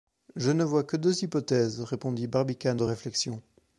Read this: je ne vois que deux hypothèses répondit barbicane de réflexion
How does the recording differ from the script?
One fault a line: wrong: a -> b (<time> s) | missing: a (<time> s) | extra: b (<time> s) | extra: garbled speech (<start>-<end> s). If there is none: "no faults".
no faults